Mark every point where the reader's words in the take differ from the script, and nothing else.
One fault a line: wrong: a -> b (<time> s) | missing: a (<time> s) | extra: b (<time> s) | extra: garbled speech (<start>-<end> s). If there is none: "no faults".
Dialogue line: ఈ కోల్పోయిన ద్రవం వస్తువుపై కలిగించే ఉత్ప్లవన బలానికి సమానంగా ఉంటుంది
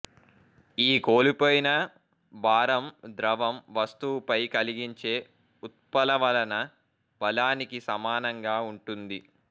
extra: భారం (2.3 s)